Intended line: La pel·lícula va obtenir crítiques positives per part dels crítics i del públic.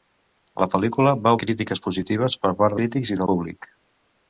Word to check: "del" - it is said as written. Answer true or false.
false